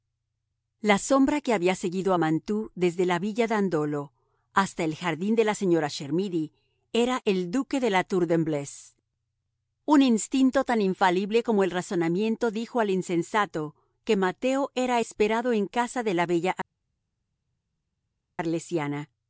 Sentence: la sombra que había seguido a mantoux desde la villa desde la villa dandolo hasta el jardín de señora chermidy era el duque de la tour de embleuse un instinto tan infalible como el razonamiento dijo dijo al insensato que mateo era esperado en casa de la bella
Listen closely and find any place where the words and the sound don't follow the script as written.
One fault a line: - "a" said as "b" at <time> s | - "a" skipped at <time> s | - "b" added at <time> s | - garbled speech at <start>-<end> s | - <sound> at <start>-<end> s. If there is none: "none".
- "desde la villa" skipped at 3.5 s
- "la" added at 5.4 s
- "dijo" skipped at 12.8 s